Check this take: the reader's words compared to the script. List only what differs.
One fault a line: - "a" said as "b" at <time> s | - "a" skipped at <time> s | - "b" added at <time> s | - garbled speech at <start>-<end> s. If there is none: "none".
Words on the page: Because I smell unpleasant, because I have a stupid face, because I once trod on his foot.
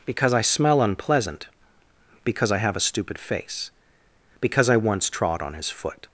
none